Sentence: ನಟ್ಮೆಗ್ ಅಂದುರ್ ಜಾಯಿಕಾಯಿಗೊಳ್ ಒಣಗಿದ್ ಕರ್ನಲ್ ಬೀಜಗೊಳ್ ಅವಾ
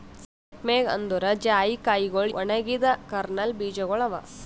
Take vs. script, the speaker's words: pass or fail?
pass